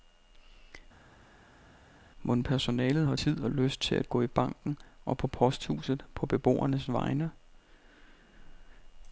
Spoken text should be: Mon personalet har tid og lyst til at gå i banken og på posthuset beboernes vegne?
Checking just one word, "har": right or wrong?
right